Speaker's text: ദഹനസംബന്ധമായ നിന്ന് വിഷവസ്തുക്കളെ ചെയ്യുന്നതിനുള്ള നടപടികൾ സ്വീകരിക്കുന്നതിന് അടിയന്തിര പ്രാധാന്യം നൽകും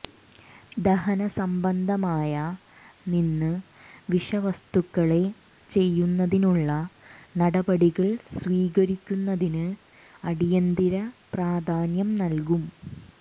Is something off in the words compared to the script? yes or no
no